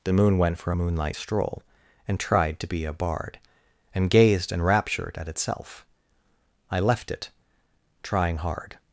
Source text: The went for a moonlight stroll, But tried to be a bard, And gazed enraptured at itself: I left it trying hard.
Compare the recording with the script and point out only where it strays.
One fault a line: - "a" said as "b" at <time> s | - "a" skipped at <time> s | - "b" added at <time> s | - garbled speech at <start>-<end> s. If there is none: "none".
- "moon" added at 0.1 s
- "But" said as "And" at 2.1 s